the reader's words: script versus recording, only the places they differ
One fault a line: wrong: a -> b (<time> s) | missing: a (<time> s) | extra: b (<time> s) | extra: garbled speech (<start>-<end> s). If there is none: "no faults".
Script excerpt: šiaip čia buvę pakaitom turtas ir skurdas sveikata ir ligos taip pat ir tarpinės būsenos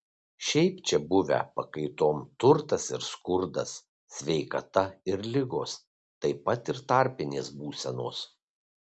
no faults